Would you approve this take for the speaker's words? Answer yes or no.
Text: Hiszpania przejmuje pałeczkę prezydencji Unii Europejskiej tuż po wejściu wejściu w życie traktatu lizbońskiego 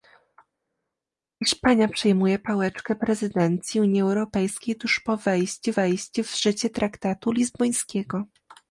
yes